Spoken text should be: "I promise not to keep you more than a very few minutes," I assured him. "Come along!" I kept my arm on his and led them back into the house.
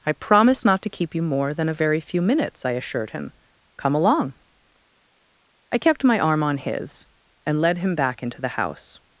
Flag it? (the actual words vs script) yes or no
yes